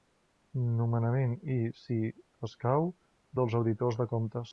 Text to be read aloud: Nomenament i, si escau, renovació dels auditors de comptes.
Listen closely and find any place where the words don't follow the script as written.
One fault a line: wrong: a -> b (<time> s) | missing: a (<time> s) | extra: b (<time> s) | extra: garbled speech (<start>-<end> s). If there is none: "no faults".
missing: renovació (2.9 s)